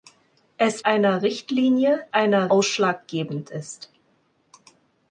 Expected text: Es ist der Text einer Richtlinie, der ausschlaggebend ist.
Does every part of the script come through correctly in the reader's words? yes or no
no